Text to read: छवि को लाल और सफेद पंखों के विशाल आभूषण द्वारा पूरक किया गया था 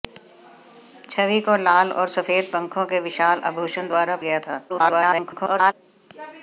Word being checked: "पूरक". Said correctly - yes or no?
no